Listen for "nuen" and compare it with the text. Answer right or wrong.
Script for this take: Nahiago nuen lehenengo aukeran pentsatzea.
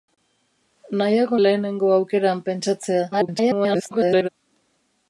wrong